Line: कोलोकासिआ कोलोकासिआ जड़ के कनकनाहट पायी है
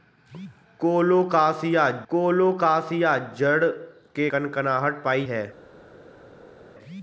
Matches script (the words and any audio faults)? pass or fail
pass